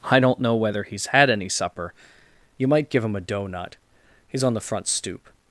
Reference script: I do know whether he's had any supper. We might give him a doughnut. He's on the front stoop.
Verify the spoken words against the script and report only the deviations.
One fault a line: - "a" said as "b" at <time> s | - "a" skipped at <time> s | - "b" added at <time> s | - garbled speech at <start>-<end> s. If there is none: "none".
- "do" said as "don't" at 0.2 s
- "We" said as "You" at 2.6 s